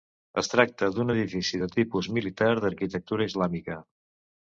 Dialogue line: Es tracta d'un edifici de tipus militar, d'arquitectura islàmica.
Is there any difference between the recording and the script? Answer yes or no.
no